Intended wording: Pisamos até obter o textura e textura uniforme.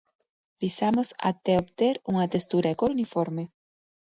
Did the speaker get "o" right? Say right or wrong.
wrong